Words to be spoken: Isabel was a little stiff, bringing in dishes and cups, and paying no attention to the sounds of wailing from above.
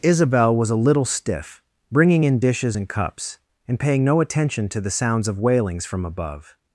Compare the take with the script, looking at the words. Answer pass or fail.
fail